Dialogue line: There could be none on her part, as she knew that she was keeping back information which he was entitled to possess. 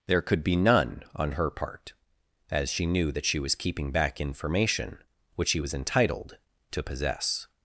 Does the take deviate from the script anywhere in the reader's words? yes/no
no